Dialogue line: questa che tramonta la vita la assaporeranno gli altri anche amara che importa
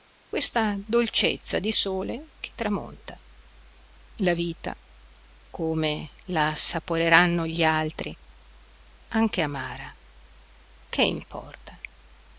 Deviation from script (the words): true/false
true